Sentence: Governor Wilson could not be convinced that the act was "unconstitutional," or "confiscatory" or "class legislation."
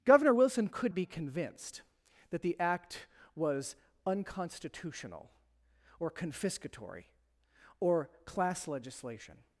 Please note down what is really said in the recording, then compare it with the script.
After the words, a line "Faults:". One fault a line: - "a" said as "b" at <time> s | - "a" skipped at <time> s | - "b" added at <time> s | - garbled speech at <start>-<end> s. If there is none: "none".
Governor Wilson could be convinced that the act was "unconstitutional," or "confiscatory" or "class legislation."
Faults:
- "not" skipped at 0.9 s